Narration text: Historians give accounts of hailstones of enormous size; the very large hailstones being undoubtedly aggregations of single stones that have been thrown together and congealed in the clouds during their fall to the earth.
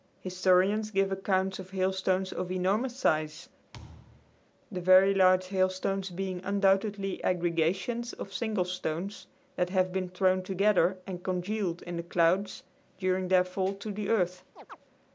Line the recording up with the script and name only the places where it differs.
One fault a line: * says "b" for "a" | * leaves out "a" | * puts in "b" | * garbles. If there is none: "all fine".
all fine